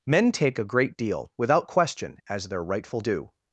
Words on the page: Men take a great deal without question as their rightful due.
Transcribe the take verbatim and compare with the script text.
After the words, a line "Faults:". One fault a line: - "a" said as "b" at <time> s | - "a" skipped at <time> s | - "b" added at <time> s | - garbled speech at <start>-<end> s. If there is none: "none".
Men take a great deal without question as their rightful due.
Faults:
none